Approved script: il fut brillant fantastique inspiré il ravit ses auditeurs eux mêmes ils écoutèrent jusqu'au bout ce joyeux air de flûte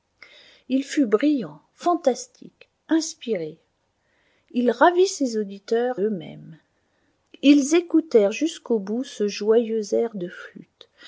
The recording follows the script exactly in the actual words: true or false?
true